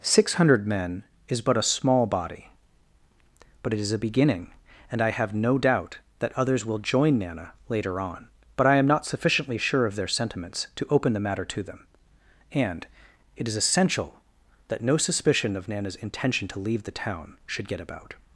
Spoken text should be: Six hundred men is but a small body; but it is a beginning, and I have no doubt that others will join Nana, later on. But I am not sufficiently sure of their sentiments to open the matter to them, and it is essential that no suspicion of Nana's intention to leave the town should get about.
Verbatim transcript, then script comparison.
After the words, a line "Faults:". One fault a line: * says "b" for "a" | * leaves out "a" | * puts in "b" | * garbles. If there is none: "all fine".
Six hundred men is but a small body; but it is a beginning, and I have no doubt that others will join Nana, later on. But I am not sufficiently sure of their sentiments to open the matter to them, and it is essential that no suspicion of Nana's intention to leave the town should get about.
Faults:
all fine